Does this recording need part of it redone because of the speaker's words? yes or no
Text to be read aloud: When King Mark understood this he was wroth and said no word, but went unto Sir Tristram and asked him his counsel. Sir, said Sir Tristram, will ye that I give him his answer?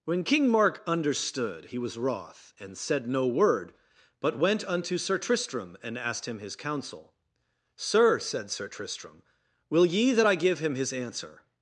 yes